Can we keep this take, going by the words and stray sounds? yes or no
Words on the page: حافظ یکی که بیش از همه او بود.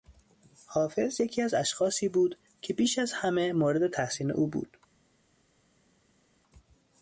no